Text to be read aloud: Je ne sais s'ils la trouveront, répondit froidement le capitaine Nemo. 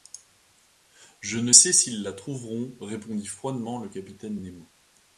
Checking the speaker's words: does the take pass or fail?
pass